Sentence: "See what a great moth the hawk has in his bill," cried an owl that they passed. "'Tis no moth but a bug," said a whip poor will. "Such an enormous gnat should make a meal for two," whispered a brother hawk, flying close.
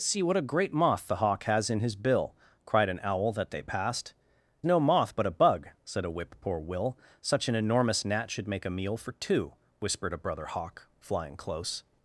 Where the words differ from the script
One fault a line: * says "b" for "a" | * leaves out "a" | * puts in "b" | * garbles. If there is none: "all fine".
* leaves out "Tis"